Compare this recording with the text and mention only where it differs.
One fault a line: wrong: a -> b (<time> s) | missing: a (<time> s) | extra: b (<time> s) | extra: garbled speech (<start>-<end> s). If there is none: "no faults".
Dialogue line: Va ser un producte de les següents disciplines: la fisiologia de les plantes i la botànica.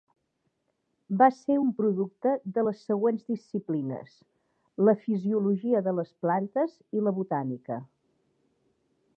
no faults